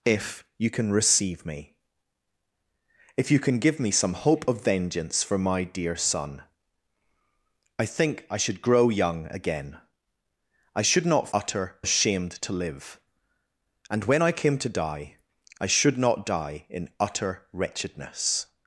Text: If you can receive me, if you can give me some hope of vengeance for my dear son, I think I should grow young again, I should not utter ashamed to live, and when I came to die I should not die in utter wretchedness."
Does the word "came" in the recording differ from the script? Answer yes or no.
no